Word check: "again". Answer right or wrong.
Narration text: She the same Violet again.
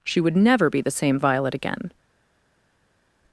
right